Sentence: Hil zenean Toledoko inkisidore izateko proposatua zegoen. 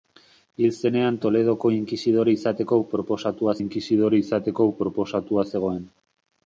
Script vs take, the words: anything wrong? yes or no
yes